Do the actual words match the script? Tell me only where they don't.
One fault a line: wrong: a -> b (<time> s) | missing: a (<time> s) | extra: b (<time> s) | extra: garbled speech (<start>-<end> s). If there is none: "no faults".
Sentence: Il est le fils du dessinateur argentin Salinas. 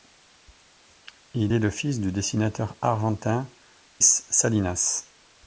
no faults